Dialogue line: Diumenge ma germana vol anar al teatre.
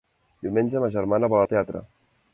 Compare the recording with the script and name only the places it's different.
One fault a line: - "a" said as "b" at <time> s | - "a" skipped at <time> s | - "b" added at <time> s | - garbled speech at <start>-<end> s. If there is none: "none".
- "anar" skipped at 1.4 s